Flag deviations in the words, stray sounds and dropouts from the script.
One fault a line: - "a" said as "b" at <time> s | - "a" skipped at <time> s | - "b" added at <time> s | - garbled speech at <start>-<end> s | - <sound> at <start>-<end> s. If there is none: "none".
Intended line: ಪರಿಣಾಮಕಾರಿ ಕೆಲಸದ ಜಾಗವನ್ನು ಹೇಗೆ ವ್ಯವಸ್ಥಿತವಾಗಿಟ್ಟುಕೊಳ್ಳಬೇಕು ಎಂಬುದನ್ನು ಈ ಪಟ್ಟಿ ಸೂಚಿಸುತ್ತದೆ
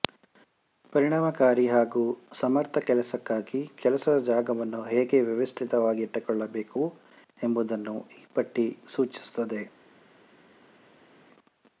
- "ಹಾಗೂ ಸಮರ್ಥ ಕೆಲಸಕ್ಕಾಗಿ" added at 1.7 s